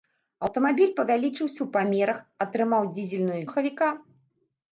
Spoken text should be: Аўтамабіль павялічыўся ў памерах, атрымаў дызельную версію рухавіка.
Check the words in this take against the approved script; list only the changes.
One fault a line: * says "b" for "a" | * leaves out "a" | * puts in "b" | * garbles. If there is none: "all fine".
* leaves out "версію"